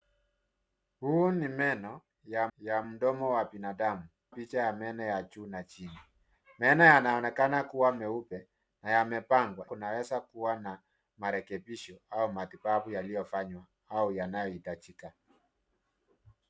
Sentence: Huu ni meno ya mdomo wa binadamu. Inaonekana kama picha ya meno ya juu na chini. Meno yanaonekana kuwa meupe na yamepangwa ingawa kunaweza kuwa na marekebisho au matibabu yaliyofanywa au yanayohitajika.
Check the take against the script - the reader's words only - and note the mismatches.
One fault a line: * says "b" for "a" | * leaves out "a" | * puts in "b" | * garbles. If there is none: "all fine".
* puts in "ya"
* leaves out "Inaonekana kama"
* leaves out "ingawa"